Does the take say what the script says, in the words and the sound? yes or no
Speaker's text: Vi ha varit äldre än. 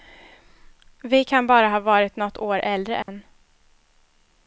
no